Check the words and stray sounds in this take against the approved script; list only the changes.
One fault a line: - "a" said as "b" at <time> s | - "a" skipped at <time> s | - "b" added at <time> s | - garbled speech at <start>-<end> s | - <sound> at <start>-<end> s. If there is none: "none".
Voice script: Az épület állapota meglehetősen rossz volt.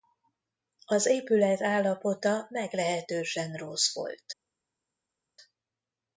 none